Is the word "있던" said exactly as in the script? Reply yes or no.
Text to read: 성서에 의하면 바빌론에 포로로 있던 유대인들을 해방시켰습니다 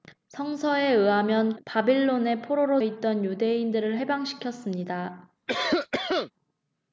yes